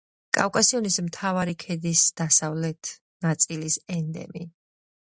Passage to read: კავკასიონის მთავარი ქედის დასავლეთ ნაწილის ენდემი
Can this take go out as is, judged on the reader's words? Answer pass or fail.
pass